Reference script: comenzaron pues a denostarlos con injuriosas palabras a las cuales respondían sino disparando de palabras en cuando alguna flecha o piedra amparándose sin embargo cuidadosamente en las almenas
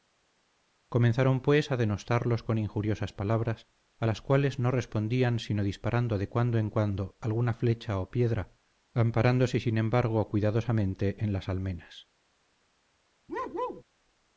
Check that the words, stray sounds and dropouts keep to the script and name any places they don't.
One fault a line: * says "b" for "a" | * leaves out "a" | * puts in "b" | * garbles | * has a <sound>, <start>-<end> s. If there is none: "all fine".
* puts in "no"
* says "cuando" for "palabras"
* has a bark, 13.3-13.8 s